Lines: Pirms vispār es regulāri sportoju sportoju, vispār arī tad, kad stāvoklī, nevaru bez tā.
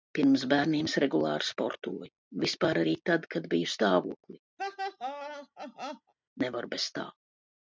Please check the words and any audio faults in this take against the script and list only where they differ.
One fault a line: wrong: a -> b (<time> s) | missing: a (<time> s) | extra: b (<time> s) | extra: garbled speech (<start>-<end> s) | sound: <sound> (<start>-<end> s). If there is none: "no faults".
wrong: vispār -> bērniem (0.5 s)
missing: sportoju (2.1 s)
extra: biju (3.6 s)
sound: laugh (4.6-6.1 s)